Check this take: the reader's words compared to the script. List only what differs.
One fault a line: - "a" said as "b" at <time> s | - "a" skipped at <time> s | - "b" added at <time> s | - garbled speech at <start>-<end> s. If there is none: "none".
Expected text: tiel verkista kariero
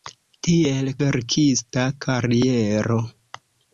none